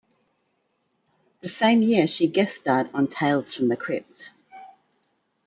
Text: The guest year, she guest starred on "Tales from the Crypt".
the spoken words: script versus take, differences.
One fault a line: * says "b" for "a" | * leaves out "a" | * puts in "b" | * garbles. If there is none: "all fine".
* says "same" for "guest"